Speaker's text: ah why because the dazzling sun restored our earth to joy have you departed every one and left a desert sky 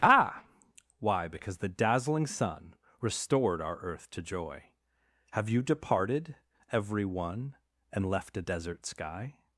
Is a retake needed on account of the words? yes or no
no